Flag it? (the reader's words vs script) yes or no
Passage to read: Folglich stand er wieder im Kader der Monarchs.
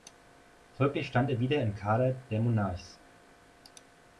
no